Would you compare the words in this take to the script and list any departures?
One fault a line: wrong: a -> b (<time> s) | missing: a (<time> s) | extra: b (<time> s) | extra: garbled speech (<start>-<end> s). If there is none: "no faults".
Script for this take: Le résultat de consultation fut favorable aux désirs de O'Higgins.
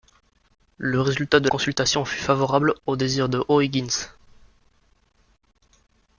no faults